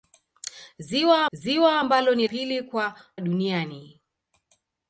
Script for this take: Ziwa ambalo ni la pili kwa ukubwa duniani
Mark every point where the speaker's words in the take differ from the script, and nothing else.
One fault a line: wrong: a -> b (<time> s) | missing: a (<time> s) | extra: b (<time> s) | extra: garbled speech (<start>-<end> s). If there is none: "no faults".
extra: ziwa (1.3 s)
missing: la (2.3 s)
missing: ukubwa (3.0 s)